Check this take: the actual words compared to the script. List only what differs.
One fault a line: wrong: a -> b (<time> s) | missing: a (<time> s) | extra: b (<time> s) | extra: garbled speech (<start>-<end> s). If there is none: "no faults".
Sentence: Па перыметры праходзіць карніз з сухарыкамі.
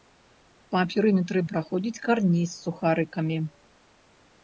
no faults